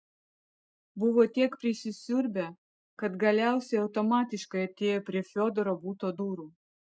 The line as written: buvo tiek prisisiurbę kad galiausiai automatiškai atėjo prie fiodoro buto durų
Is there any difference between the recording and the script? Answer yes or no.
no